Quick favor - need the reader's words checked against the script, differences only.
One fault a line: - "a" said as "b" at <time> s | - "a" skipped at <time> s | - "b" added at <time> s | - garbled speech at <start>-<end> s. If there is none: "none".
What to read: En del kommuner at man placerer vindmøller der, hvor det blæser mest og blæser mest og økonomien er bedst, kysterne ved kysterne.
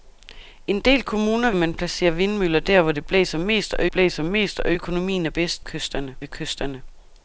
none